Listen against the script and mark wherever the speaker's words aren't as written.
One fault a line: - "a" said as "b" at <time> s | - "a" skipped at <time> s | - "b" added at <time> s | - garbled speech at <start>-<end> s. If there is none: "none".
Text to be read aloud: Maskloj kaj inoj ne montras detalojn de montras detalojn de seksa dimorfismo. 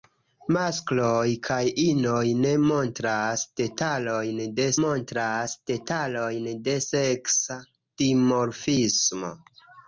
none